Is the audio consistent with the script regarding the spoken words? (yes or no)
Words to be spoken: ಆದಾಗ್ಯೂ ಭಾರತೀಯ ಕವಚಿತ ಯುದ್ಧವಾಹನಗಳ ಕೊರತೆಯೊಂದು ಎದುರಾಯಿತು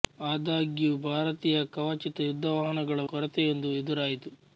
yes